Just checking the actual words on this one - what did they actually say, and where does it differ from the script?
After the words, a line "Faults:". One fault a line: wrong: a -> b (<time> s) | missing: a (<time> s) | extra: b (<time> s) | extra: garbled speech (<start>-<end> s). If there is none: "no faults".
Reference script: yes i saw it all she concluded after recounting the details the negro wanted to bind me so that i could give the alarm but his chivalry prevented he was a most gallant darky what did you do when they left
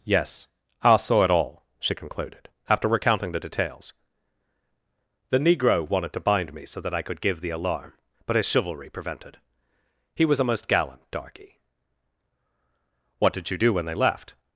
yes i saw it all she concluded after recounting the details the negro wanted to bind me so that i could give the alarm but his chivalry prevented he was a most gallant darky what did you do when they left
Faults:
no faults